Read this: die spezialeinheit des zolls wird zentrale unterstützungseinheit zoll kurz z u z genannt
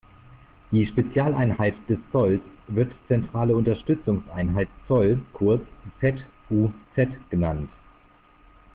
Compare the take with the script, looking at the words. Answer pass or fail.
pass